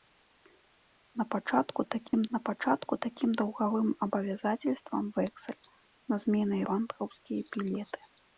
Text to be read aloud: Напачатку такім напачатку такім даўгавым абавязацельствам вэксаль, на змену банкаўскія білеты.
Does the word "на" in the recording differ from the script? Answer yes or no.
no